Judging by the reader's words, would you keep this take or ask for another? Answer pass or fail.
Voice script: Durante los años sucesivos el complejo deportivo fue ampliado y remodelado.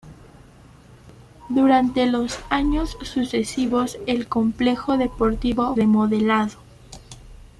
fail